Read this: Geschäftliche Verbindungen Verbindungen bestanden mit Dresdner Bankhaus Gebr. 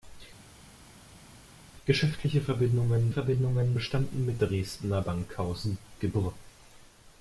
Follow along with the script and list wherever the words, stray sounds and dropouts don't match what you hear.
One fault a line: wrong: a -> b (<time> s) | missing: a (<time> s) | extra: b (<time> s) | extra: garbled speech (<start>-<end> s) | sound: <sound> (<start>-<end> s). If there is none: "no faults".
no faults